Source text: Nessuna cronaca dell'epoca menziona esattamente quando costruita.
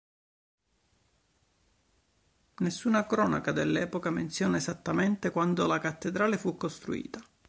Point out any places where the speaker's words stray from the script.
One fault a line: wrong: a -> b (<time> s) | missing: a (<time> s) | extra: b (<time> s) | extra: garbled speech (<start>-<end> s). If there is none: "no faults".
extra: la cattedrale fu (5.7 s)